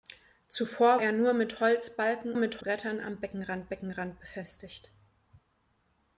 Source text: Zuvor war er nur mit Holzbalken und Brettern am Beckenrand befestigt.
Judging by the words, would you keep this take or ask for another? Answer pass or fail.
fail